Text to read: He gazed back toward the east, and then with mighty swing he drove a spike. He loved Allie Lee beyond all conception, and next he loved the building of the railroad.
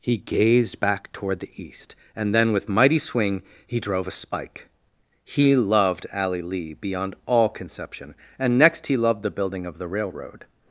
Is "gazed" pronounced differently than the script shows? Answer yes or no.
no